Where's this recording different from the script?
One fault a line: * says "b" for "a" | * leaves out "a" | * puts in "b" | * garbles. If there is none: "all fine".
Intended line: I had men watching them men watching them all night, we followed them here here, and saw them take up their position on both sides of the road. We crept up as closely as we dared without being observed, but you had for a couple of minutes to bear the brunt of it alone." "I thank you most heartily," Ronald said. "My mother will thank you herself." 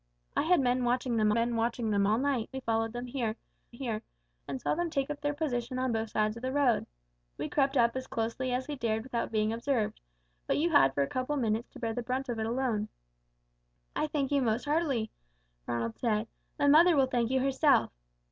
all fine